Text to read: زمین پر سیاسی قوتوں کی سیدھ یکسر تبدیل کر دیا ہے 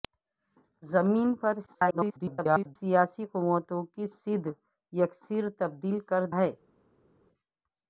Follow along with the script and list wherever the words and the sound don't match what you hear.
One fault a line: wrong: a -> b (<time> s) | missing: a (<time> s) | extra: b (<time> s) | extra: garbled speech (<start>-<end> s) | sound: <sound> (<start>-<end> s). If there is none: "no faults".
extra: garbled speech (1.7-2.8 s)
missing: دیا (6.2 s)